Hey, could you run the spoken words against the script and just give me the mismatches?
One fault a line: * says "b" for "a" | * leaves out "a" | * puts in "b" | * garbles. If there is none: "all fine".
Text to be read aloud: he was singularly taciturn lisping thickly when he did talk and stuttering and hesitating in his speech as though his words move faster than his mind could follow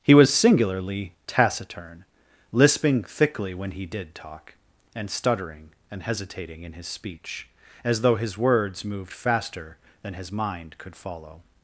* says "moved" for "move"